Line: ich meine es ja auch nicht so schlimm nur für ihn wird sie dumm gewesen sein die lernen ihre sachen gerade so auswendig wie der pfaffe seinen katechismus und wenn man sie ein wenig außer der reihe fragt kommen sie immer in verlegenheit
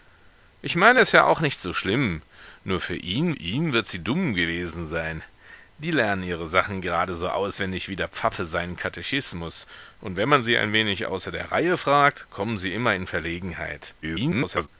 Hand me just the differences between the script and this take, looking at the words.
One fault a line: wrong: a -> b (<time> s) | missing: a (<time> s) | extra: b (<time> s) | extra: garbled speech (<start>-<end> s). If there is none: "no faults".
extra: ihn (3.3 s)
extra: garbled speech (14.0-14.7 s)